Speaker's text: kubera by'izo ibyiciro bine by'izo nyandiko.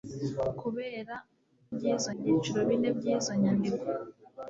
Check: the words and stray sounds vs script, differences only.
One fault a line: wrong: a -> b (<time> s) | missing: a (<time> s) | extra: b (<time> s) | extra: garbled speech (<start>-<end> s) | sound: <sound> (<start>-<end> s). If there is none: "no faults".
no faults